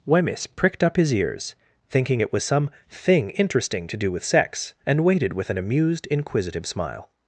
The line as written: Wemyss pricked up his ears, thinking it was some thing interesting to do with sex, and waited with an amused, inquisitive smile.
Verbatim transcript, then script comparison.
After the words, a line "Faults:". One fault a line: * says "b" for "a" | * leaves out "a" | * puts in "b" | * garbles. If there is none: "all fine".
Wemyss pricked up his ears, thinking it was some thing interesting to do with sex, and waited with an amused, inquisitive smile.
Faults:
all fine